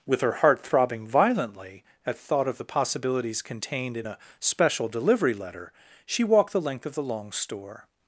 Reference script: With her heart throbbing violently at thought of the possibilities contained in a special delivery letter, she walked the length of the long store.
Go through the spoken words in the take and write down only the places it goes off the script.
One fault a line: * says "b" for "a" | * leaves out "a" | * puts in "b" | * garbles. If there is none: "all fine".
all fine